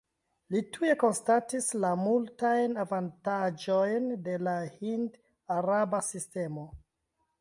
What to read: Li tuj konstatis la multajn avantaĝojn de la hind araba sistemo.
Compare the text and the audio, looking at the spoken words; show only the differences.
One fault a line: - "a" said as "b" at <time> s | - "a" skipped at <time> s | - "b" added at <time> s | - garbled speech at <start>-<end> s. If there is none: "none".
none